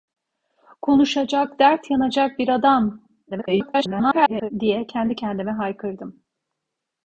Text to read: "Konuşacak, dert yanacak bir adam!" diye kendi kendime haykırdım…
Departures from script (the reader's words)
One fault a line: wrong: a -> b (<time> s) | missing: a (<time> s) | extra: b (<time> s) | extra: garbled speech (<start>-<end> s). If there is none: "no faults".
extra: garbled speech (3.3-4.5 s)